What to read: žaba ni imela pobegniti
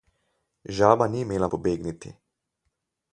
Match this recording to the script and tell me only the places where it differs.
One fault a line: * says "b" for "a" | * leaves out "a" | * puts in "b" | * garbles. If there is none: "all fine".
all fine